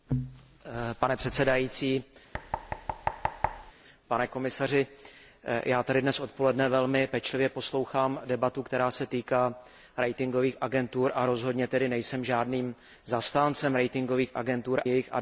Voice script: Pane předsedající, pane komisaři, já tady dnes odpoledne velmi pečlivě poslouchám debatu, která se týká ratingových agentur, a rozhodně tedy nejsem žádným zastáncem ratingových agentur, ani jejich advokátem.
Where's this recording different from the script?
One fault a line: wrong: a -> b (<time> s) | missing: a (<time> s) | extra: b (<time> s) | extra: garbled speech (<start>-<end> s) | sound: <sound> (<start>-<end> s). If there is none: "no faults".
sound: thud (2.3-3.7 s)
missing: ani (14.8 s)